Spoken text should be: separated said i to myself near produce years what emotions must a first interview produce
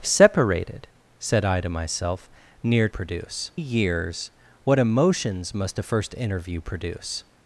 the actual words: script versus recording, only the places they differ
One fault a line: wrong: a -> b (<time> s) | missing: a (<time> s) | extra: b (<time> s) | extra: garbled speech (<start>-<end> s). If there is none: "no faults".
no faults